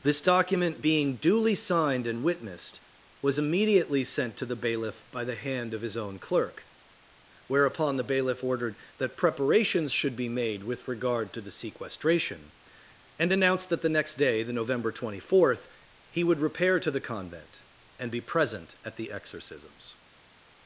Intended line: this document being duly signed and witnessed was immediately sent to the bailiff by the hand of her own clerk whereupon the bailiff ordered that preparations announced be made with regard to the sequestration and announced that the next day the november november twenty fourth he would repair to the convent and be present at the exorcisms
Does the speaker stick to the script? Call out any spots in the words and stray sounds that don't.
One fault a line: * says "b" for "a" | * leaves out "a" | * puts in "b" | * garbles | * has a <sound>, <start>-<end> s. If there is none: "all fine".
* says "his" for "her"
* says "should" for "announced"
* leaves out "november"